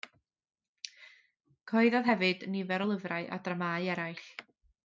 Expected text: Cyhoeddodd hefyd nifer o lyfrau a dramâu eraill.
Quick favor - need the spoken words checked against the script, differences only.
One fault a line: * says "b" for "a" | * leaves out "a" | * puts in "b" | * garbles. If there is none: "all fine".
all fine